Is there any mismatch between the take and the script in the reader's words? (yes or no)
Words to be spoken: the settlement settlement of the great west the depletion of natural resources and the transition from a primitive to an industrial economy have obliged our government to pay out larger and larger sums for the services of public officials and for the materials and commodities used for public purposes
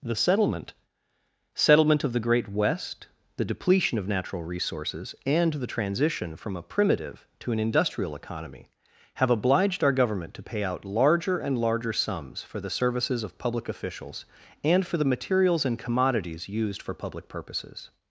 no